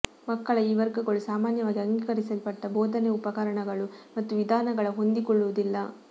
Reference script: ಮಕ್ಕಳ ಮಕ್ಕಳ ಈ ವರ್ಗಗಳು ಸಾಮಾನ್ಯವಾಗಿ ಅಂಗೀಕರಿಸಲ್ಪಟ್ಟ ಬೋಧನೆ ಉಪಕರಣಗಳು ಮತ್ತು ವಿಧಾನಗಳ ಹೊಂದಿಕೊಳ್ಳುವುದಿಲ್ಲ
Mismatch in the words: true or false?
true